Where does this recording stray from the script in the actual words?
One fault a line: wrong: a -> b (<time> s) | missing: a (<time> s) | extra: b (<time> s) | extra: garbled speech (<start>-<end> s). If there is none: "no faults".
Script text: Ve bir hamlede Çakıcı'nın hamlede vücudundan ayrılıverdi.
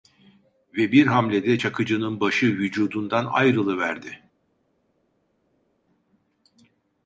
wrong: hamlede -> başı (2.2 s)